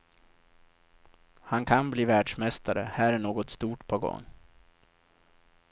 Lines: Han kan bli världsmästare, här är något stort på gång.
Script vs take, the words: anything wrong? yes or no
no